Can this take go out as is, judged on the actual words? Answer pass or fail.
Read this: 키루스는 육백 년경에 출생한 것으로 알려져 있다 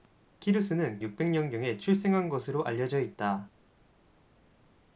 pass